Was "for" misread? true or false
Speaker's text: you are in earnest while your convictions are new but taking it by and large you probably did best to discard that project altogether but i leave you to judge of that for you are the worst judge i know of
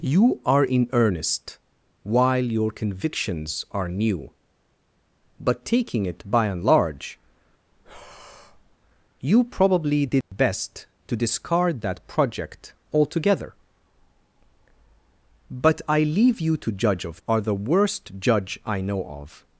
true